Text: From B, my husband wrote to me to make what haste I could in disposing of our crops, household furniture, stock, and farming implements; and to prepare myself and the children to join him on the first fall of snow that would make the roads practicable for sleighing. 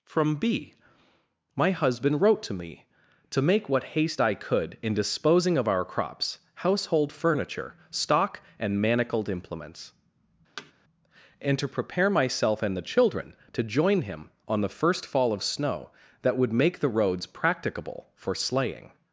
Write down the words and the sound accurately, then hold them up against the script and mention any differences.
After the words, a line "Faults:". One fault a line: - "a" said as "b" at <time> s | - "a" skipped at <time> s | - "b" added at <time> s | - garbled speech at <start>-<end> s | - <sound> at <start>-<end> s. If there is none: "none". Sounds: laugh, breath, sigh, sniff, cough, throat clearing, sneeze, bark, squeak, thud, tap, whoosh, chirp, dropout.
From B, my husband wrote to me to make what haste I could in disposing of our crops, household furniture, stock, and manacled implements; and to prepare myself and the children to join him on the first fall of snow that would make the roads practicable for sleighing.
Faults:
- "farming" said as "manacled" at 8.8 s
- thud at 10.6-10.7 s